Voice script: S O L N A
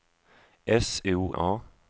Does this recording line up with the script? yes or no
no